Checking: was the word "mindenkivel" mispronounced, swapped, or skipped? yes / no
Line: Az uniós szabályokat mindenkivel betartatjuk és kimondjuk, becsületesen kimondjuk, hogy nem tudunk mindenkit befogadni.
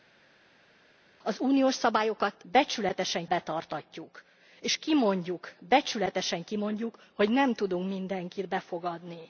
yes